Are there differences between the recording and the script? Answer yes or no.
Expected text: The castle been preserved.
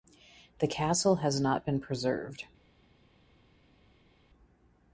yes